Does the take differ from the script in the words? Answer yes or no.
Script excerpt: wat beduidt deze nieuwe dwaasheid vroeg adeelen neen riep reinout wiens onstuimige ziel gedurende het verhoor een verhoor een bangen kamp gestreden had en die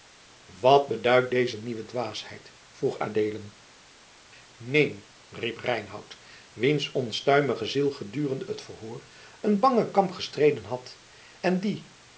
yes